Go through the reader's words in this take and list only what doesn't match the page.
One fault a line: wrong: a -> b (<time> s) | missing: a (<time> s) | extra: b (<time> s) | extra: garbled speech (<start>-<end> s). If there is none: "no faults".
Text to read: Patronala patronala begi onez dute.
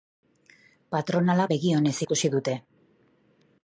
missing: patronala (1.5 s)
extra: ikusi (2.1 s)